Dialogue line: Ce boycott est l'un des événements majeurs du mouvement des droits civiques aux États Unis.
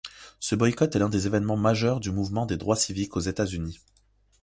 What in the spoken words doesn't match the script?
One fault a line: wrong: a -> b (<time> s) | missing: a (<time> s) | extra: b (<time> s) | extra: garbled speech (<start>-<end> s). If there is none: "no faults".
no faults